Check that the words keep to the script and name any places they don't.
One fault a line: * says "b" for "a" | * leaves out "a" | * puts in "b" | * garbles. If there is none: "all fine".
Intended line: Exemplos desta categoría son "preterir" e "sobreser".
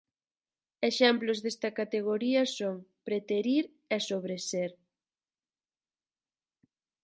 all fine